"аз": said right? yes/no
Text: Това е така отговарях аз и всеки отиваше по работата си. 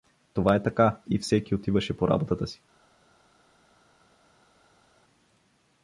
no